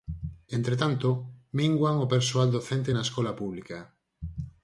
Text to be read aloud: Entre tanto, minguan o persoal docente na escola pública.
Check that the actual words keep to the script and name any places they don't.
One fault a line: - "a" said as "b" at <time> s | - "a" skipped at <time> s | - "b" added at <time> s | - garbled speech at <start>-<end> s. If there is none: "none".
none